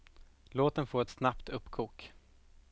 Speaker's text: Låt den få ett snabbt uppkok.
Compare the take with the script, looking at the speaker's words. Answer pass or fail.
pass